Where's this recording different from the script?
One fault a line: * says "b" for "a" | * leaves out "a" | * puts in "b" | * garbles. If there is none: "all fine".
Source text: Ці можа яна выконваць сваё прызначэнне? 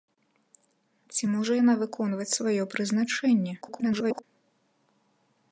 * garbles